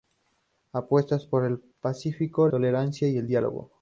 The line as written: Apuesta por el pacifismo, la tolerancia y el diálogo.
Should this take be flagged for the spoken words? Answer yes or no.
yes